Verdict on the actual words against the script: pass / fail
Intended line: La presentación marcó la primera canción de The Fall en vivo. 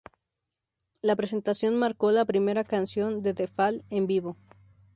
pass